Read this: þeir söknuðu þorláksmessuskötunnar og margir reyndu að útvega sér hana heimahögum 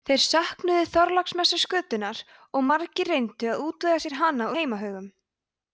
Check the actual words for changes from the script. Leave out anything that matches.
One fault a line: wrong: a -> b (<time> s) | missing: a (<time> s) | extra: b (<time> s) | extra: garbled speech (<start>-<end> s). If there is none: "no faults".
no faults